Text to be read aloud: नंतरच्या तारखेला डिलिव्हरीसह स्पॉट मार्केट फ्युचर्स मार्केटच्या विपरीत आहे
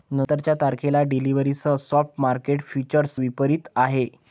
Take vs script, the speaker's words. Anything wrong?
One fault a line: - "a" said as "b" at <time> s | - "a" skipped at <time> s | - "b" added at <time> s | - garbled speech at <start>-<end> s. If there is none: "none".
- "मार्केटच्या" skipped at 3.2 s